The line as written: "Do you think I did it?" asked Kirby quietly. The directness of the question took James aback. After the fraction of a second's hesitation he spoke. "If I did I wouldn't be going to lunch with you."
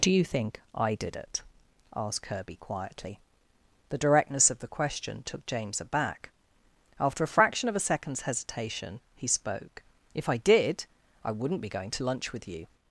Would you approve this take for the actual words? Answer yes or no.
no